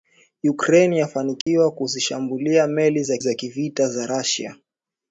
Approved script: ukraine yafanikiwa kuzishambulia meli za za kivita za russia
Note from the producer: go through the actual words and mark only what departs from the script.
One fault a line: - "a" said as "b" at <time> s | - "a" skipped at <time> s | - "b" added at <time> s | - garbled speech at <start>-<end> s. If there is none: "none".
none